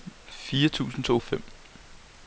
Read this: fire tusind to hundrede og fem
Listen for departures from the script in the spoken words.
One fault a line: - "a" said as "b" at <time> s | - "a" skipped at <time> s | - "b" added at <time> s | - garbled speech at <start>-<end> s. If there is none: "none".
- "hundrede" skipped at 1.2 s